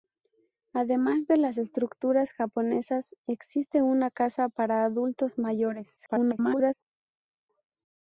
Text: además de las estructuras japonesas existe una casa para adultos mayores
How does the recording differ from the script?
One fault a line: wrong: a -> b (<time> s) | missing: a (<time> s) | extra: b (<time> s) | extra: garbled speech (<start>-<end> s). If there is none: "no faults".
extra: garbled speech (6.0-6.7 s)